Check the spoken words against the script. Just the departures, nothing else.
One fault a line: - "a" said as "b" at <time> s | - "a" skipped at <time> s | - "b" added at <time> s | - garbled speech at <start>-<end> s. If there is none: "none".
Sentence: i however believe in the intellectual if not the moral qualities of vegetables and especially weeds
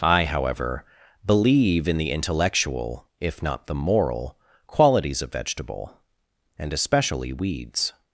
- "vegetables" said as "vegetable" at 5.3 s